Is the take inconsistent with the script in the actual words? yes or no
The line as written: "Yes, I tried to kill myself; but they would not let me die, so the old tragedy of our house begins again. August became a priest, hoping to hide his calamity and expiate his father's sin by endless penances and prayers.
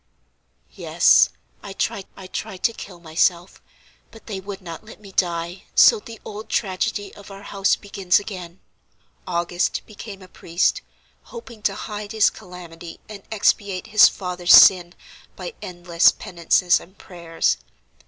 yes